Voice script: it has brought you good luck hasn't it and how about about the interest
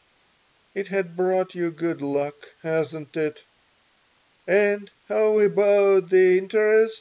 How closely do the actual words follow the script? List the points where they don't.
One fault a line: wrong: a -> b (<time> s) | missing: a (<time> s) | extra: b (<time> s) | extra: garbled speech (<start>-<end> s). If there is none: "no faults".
missing: about (6.1 s)